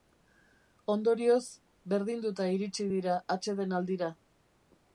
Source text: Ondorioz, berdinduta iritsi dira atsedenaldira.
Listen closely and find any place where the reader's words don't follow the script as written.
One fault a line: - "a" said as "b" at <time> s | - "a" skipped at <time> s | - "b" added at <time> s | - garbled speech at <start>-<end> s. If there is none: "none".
none